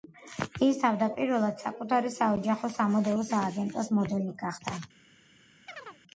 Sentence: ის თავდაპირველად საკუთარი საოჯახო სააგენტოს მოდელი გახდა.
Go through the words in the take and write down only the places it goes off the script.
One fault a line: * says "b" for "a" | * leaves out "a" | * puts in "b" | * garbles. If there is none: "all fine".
* puts in "სამოდელო"